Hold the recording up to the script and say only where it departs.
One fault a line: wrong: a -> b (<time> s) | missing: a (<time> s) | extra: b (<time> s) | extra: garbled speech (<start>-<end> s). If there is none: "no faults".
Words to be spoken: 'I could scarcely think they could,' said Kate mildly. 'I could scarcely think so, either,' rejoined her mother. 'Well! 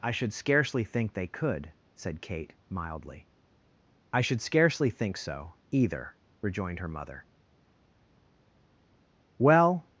wrong: could -> should (0.1 s)
wrong: could -> should (4.2 s)